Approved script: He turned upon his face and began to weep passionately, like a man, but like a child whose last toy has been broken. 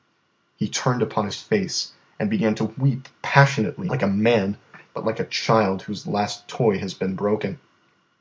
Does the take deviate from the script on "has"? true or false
false